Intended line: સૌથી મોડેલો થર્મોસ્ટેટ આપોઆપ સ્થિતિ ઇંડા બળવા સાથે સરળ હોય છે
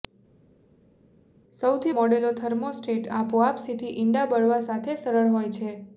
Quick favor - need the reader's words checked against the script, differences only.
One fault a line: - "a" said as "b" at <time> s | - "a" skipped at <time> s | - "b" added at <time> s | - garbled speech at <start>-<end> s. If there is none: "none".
none